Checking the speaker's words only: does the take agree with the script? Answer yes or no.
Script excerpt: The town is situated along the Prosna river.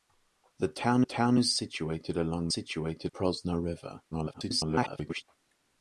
no